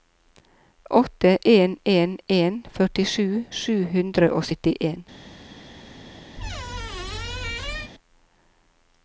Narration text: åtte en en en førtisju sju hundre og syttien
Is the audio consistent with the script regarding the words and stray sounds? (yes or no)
no